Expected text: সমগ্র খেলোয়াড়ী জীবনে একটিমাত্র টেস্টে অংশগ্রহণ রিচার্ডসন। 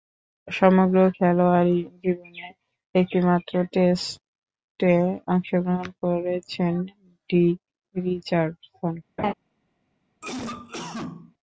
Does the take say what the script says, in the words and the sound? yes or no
no